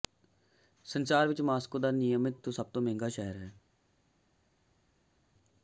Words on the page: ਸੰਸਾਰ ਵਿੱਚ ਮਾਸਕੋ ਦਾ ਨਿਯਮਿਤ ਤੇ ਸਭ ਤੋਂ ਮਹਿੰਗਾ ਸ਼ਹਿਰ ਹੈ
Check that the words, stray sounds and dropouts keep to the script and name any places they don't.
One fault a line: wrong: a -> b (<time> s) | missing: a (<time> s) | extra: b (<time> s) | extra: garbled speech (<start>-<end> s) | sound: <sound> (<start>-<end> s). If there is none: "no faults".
no faults